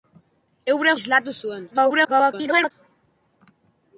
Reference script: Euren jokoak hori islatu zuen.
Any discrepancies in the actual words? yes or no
yes